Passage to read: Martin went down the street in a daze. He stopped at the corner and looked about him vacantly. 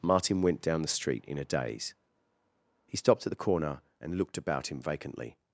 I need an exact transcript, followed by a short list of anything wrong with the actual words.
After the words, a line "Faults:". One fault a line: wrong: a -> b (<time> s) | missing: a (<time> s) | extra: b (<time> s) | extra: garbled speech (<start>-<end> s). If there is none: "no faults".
Martin went down the street in a daze. He stopped at the corner and looked about him vacantly.
Faults:
no faults